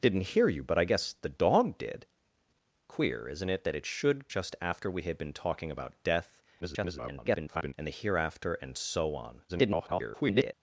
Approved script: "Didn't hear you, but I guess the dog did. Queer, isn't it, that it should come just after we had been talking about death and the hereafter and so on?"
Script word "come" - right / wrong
wrong